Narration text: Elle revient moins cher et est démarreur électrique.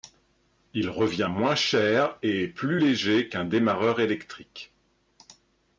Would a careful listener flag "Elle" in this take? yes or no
yes